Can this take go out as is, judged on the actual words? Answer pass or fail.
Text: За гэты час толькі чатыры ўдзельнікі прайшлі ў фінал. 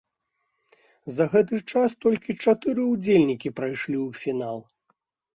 pass